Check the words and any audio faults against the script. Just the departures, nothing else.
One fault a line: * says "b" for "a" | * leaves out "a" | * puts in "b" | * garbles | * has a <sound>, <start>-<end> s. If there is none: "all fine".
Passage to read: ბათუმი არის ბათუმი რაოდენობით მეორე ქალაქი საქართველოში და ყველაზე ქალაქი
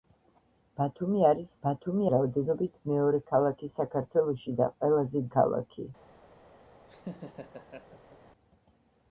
* has a laugh, 6.9-8.2 s